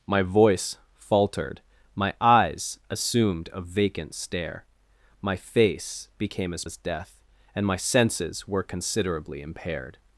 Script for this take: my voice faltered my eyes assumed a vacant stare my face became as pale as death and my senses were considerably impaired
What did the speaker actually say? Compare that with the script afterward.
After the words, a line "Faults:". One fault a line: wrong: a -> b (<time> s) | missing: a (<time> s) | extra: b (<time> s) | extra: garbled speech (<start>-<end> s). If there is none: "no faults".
my voice faltered my eyes assumed a vacant stare my face became as as death and my senses were considerably impaired
Faults:
missing: pale (6.7 s)